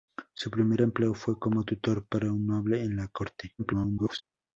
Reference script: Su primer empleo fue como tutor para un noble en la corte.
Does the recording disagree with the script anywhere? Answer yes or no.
yes